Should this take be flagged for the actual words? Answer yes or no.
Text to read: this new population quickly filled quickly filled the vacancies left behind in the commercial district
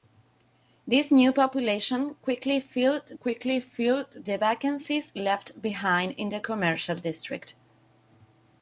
no